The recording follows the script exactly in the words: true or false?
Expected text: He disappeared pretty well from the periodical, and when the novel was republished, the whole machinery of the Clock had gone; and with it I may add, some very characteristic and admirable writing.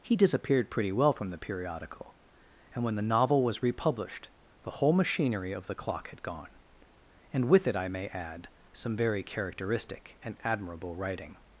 true